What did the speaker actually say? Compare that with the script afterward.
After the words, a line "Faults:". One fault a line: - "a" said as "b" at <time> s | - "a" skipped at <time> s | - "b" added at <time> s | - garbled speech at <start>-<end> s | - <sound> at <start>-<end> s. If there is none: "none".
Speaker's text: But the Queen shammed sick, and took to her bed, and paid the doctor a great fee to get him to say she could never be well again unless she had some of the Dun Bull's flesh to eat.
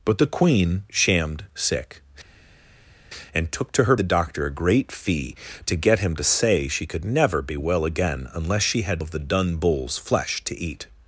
But the Queen shammed sick, and took to her the doctor a great fee to get him to say she could never be well again unless she had of the Dun Bull's flesh to eat.
Faults:
- "bed and paid" skipped at 4.0 s
- "some" skipped at 9.0 s